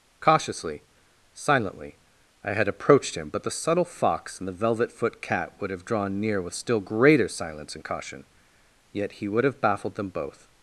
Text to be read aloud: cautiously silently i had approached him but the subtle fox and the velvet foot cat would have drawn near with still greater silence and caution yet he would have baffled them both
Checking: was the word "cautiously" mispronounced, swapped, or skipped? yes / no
no